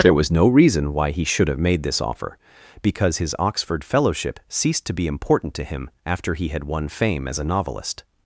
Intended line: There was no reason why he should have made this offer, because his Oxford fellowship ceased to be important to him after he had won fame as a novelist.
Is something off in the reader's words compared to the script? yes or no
no